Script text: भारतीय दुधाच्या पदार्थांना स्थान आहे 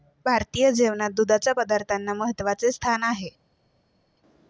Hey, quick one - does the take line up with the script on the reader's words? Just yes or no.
no